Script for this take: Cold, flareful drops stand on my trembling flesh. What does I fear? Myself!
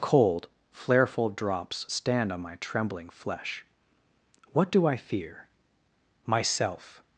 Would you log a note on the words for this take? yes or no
yes